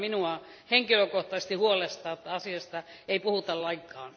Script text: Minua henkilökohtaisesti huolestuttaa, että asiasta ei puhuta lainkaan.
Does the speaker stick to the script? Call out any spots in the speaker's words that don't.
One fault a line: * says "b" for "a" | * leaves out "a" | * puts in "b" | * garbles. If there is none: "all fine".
all fine